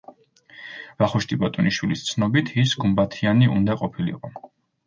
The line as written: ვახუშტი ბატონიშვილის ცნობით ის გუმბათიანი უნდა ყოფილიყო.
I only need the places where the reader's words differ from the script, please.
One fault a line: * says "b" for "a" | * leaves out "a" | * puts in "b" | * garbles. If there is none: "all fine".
all fine